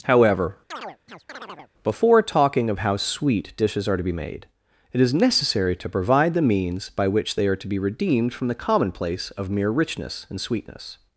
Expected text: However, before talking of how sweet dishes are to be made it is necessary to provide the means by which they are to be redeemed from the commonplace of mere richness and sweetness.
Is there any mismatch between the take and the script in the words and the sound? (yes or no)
yes